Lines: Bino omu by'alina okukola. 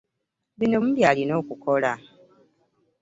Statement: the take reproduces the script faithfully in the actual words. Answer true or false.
true